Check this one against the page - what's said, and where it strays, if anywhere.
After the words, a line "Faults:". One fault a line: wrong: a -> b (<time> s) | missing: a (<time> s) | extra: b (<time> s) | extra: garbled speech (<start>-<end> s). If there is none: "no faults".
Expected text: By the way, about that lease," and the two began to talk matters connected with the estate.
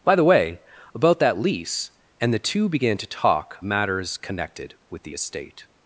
By the way, about that lease," and the two began to talk matters connected with the estate.
Faults:
no faults